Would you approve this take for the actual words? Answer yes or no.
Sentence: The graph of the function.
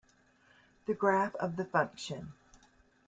yes